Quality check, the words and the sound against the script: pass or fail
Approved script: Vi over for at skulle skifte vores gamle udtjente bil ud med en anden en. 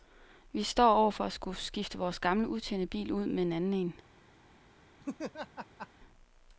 fail